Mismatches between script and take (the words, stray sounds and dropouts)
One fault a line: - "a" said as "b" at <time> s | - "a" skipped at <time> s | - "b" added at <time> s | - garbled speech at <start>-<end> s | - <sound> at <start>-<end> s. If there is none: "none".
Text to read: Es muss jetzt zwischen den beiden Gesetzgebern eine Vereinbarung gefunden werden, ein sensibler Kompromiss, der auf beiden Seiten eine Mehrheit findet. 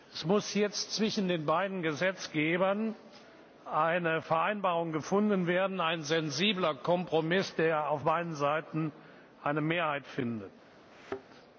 - thud at 10.9-11.2 s